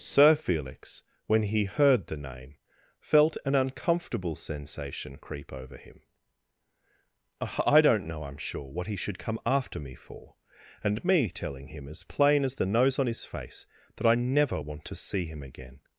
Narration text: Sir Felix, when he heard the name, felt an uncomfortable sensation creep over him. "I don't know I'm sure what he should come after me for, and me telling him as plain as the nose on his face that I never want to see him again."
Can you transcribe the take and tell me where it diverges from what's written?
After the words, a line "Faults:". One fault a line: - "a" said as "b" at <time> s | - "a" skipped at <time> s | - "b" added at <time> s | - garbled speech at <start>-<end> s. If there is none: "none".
Sir Felix, when he heard the name, felt an uncomfortable sensation creep over him. "I don't know I'm sure what he should come after me for, and me telling him as plain as the nose on his face that I never want to see him again."
Faults:
none